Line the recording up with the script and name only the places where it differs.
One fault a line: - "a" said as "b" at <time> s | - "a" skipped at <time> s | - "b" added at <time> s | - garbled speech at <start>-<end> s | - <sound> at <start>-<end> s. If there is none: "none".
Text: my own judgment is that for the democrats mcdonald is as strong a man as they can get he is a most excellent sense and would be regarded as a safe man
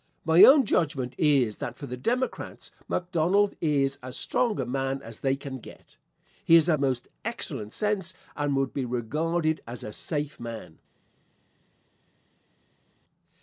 none